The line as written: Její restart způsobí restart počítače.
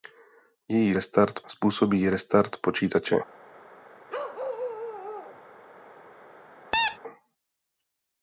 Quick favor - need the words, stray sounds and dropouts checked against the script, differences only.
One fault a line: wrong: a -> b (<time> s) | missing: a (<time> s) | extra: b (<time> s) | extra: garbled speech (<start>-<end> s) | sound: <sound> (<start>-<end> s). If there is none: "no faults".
sound: bark (4.1-5.4 s)
sound: squeak (6.7-7.0 s)